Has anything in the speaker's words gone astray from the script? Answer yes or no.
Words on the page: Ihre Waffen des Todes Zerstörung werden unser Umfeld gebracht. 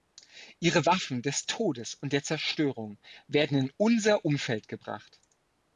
yes